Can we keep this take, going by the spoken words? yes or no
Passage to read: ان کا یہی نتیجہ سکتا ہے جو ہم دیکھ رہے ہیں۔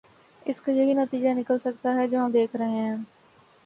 no